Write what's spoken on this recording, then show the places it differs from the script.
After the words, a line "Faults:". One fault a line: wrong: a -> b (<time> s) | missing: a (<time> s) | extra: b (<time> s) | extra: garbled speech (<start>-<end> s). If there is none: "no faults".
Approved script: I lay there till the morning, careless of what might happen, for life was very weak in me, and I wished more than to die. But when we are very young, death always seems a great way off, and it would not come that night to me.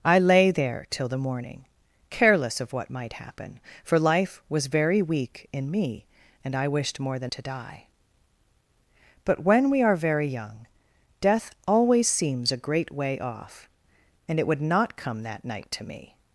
I lay there till the morning, careless of what might happen, for life was very weak in me, and I wished more than to die. But when we are very young, death always seems a great way off, and it would not come that night to me.
Faults:
no faults